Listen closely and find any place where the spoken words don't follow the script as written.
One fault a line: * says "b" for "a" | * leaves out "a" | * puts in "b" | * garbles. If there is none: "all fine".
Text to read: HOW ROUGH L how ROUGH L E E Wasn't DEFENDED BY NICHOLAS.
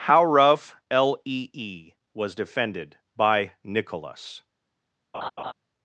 * leaves out "how ROUGH L"
* says "WAS" for "Wasn't"